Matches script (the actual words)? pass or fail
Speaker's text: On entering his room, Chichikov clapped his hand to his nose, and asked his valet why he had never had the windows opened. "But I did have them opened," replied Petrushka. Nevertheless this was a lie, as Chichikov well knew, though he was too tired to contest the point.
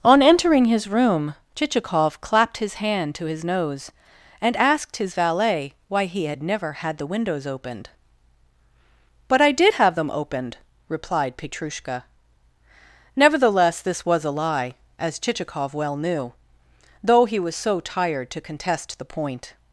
fail